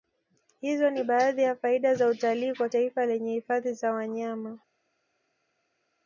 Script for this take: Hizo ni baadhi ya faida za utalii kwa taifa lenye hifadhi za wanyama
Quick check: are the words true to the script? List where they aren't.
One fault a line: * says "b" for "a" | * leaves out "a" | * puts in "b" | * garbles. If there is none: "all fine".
all fine